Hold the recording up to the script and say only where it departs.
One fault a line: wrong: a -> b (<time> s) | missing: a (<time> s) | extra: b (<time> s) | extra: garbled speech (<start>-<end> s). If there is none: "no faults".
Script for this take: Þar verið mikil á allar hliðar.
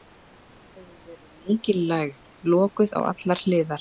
extra: hefur (0.8 s)
extra: lægð lokuð (1.9 s)